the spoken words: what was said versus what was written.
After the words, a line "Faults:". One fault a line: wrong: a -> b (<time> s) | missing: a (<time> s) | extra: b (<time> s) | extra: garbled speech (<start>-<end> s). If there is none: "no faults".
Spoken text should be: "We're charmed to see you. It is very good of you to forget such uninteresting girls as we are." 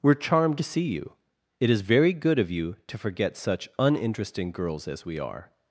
"We're charmed to see you. It is very good of you to forget such uninteresting girls as we are."
Faults:
no faults